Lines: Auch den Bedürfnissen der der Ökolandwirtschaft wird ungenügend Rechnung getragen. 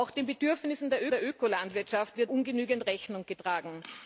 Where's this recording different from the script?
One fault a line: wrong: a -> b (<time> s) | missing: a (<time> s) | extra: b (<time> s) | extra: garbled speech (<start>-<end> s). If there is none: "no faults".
no faults